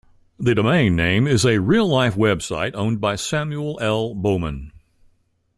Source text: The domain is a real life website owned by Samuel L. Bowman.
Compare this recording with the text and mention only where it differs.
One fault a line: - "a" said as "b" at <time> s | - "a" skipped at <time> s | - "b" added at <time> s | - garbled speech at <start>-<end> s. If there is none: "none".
- "name" added at 0.9 s